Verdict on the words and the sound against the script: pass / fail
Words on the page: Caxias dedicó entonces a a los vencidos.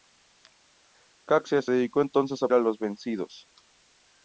pass